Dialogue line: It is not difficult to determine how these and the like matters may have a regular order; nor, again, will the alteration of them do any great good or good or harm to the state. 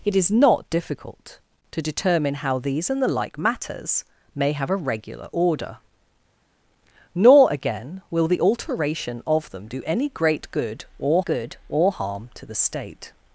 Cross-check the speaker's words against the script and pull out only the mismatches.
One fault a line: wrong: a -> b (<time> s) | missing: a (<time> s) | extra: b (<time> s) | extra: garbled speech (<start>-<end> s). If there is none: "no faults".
no faults